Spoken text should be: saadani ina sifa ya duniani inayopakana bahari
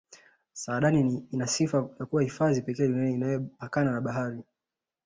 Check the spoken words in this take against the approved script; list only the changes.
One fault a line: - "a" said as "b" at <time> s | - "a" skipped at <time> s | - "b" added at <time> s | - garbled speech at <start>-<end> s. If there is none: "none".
- "kuwa hifadhi pekee" added at 2.0 s
- "na" added at 3.9 s